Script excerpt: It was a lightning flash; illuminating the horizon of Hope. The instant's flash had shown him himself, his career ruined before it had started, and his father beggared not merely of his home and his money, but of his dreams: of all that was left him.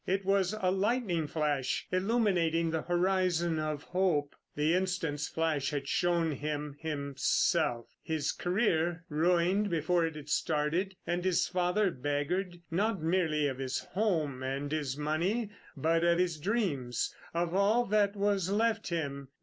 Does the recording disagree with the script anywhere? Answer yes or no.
no